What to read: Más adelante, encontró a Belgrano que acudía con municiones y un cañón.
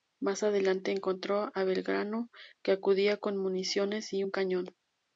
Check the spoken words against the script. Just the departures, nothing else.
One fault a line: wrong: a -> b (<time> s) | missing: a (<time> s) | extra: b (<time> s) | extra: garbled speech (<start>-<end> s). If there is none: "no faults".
no faults